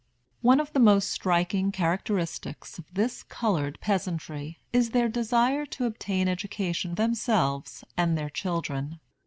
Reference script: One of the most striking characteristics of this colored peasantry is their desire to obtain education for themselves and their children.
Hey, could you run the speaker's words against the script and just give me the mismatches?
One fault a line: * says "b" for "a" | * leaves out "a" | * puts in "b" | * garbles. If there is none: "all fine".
* leaves out "for"